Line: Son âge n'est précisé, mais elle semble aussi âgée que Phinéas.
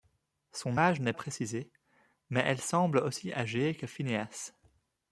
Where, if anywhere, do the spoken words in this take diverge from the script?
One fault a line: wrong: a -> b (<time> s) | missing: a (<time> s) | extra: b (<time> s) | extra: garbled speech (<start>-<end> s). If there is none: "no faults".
no faults